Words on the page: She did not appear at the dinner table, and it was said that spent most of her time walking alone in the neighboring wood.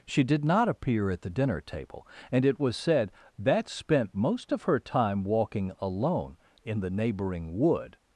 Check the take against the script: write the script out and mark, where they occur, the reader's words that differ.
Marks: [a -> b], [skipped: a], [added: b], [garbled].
She did not appear at the dinner table, and it was said that spent most of her time walking alone in the neighboring wood.